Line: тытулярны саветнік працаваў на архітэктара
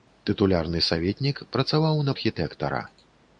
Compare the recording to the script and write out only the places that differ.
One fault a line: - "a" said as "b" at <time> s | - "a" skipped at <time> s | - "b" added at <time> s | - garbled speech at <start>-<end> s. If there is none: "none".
none